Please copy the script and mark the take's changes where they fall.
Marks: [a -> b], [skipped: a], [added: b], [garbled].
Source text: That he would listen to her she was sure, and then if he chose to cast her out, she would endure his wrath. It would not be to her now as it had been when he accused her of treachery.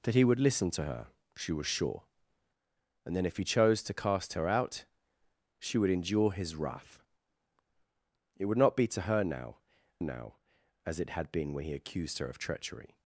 That he would listen to her she was sure, and then if he chose to cast her out, she would endure his wrath. It would not be to her now [added: now] as it had been when he accused her of treachery.